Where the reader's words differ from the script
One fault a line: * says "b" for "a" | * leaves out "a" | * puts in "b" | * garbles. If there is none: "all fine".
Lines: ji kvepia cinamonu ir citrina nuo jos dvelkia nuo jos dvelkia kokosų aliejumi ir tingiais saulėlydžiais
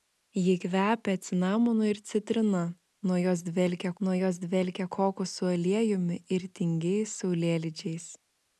all fine